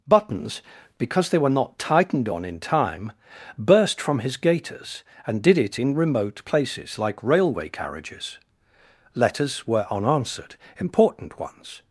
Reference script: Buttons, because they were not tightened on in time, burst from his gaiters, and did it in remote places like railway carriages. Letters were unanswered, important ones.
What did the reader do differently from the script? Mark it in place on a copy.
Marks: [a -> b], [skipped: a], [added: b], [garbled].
Buttons, because they were not tightened on in time, burst from his gaiters, and did it in remote places like railway carriages. Letters were unanswered, important ones.